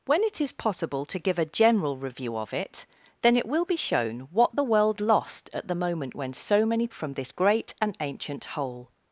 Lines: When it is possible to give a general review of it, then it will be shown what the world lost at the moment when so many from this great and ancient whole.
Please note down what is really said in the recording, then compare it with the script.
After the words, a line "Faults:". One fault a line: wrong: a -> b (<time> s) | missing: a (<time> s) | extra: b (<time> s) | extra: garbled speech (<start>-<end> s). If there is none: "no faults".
When it is possible to give a general review of it, then it will be shown what the world lost at the moment when so many from this great and ancient whole.
Faults:
no faults